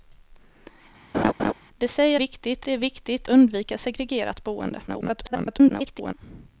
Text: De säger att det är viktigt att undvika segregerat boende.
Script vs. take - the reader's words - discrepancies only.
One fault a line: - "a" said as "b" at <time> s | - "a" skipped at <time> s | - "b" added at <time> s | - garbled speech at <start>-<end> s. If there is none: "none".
- "att" said as "viktigt" at 2.2 s
- "att" skipped at 3.3 s
- garbled speech at 4.9-6.1 s